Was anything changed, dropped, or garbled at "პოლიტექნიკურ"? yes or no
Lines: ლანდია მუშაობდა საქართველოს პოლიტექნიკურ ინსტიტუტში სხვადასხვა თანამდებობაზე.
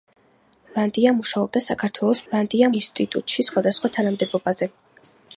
yes